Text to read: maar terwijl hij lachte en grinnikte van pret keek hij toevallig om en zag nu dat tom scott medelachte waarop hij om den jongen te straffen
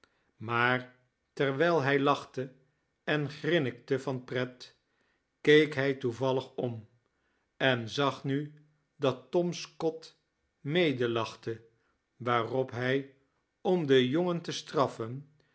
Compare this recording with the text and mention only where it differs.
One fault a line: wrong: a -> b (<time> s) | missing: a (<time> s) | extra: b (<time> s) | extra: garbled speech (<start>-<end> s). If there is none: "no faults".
no faults